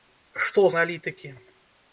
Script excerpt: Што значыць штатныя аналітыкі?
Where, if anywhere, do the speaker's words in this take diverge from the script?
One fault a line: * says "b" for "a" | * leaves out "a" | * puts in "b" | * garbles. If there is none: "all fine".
* leaves out "значыць штатныя"